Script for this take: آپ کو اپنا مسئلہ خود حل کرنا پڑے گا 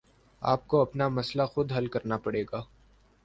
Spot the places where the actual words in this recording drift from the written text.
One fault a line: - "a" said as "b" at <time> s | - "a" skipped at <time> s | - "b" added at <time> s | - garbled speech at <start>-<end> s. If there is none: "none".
none